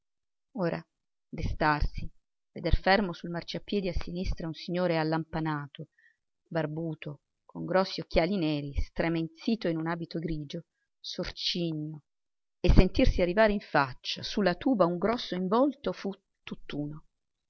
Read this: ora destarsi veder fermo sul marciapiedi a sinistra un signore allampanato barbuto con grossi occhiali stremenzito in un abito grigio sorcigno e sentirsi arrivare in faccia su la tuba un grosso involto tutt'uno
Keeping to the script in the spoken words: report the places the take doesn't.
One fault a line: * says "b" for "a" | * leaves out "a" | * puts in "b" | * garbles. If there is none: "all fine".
* puts in "neri"
* puts in "fu"